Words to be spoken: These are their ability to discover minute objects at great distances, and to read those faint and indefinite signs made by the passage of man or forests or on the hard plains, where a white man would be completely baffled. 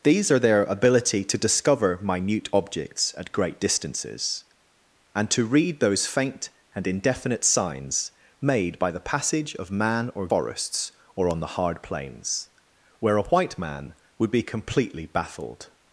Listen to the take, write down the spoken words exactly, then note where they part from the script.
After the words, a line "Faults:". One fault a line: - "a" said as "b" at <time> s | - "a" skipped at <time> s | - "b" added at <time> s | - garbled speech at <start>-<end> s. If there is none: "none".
These are their ability to discover minute objects at great distances, and to read those faint and indefinite signs made by the passage of man or forests or on the hard plains, where a white man would be completely baffled.
Faults:
none